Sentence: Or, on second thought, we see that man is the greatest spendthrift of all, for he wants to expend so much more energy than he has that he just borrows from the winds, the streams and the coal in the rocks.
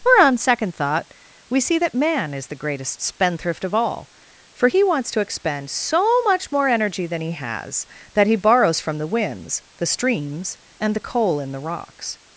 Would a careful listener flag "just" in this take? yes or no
yes